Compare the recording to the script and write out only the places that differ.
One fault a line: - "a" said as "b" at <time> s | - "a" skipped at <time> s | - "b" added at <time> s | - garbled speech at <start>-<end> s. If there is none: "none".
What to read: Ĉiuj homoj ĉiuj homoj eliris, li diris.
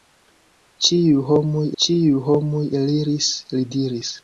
none